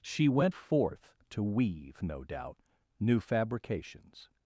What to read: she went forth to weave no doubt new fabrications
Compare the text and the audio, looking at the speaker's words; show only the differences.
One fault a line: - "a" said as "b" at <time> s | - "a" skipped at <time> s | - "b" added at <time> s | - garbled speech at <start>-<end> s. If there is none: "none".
none